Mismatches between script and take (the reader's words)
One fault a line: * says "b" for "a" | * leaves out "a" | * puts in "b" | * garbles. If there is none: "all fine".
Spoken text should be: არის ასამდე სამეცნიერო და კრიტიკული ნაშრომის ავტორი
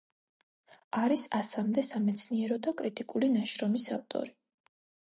all fine